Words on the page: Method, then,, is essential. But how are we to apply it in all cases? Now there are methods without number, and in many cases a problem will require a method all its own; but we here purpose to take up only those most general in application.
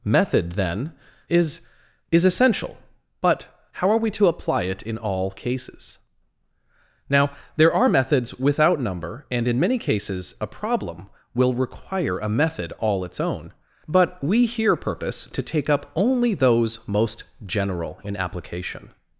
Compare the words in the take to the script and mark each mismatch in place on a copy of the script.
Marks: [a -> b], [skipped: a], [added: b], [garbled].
Method, then,, is [added: is] essential. But how are we to apply it in all cases? Now there are methods without number, and in many cases a problem will require a method all its own; but we here purpose to take up only those most general in application.